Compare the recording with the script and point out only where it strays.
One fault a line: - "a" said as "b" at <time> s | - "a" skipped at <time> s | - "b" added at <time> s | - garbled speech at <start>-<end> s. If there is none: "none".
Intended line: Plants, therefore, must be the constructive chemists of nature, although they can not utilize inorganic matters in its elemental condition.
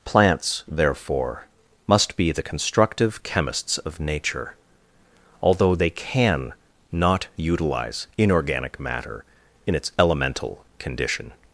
- "matters" said as "matter" at 8.8 s